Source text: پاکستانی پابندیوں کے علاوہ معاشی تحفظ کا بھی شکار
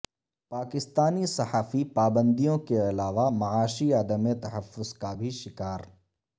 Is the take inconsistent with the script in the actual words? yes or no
yes